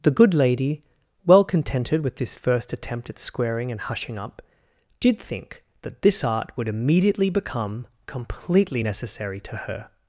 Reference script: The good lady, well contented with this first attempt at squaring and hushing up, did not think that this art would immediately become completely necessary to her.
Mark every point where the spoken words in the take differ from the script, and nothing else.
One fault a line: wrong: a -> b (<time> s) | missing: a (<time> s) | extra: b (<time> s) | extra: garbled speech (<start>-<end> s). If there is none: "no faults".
missing: not (5.2 s)